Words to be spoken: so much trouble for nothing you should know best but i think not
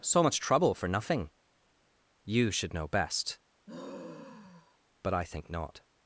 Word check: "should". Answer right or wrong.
right